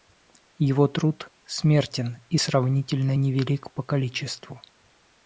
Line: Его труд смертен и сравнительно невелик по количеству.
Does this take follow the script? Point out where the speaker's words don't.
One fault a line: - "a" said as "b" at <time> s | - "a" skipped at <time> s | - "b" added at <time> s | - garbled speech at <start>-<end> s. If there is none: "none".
none